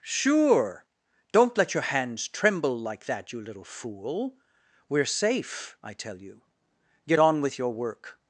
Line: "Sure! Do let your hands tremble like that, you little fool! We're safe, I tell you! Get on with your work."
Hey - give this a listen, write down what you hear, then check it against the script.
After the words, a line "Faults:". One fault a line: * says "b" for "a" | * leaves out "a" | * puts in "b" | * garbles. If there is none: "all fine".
"Sure! Don't let your hands tremble like that, you little fool! We're safe, I tell you! Get on with your work."
Faults:
* says "Don't" for "Do"